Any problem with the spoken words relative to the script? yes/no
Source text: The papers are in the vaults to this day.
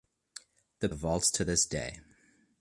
yes